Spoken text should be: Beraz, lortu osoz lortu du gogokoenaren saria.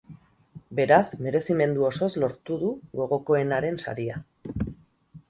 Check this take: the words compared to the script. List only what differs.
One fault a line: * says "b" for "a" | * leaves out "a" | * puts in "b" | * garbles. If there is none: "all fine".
* says "merezimendu" for "lortu"